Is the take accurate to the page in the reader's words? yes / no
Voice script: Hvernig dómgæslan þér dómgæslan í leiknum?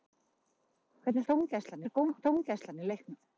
yes